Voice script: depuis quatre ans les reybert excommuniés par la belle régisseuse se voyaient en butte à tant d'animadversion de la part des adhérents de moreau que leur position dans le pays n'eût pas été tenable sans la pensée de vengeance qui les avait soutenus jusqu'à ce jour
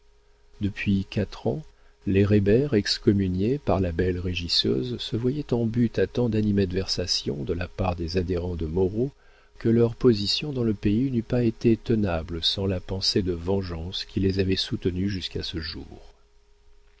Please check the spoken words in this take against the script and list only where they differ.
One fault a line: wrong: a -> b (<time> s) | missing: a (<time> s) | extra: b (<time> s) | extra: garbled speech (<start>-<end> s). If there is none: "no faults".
no faults